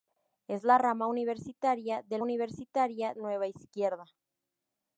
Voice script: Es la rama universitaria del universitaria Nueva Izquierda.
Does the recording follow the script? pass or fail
pass